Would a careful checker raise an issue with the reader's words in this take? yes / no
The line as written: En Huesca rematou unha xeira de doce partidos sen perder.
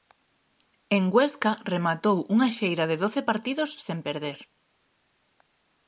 no